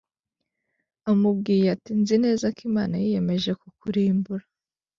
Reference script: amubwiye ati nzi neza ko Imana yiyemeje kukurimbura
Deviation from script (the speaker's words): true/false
false